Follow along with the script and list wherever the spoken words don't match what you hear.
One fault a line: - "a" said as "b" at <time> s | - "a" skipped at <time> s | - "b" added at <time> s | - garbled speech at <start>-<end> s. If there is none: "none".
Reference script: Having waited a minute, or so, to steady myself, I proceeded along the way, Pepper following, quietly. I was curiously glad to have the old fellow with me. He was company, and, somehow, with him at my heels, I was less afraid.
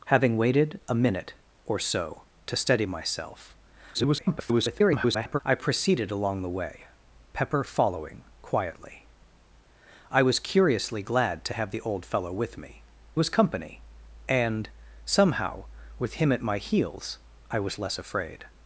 - garbled speech at 3.9-5.4 s
- "He" skipped at 12.8 s